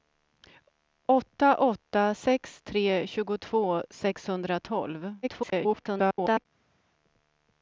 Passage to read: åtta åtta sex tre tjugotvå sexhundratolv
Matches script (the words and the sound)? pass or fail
fail